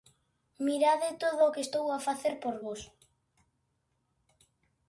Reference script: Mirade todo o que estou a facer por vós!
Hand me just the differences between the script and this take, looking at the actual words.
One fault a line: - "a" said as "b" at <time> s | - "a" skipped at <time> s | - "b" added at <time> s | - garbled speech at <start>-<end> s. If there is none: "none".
none